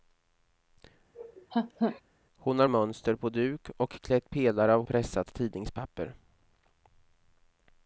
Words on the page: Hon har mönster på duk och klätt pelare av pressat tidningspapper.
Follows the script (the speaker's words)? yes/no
yes